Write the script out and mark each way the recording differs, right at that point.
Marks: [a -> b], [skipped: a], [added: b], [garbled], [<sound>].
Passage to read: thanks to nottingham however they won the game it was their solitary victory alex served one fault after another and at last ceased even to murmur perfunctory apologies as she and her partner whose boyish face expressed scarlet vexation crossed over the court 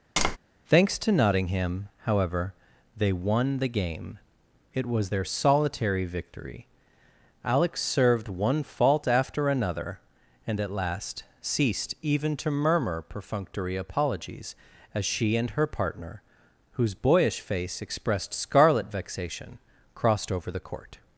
[tap] thanks to nottingham however they won the game it was their solitary victory alex served one fault after another and at last ceased even to murmur perfunctory apologies as she and her partner whose boyish face expressed scarlet vexation crossed over the court